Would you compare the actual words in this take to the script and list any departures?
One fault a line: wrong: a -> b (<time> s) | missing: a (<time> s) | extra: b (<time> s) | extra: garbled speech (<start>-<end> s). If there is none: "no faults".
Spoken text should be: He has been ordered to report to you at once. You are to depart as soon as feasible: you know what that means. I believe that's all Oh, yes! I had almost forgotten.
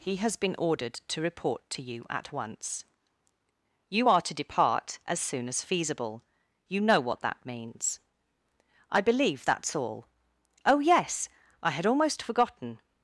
no faults